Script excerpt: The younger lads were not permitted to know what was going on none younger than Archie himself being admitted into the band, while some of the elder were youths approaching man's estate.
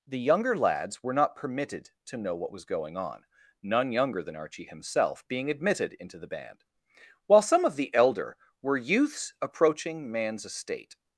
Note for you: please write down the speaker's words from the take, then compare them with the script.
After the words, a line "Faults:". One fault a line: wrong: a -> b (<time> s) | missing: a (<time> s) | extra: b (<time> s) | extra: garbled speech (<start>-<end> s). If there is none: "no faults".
The younger lads were not permitted to know what was going on none younger than Archie himself being admitted into the band, while some of the elder were youths approaching man's estate.
Faults:
no faults